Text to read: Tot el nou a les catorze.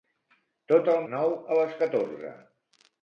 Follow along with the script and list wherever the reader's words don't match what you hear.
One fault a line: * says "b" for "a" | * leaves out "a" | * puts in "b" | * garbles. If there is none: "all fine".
all fine